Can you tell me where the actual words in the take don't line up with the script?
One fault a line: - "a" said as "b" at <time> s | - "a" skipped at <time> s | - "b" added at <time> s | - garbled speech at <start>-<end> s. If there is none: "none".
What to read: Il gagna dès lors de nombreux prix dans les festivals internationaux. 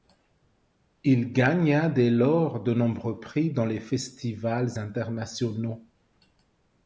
none